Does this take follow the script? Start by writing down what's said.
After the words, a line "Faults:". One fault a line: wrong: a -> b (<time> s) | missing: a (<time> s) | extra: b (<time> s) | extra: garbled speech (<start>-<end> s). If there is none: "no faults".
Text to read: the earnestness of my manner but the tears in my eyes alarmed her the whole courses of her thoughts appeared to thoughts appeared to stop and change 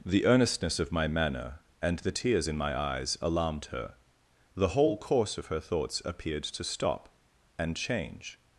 the earnestness of my manner and the tears in my eyes alarmed her the whole course of her thoughts appeared to stop and change
Faults:
wrong: but -> and (1.8 s)
wrong: courses -> course (5.0 s)
missing: thoughts appeared to (6.6 s)